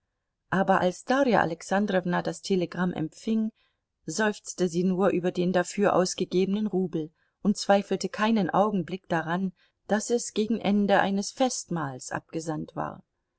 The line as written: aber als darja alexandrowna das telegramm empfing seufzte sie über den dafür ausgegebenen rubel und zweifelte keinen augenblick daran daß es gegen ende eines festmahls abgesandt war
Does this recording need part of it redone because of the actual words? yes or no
yes